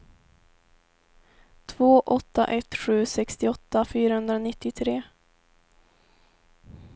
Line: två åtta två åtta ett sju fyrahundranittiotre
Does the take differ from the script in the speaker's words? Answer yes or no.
yes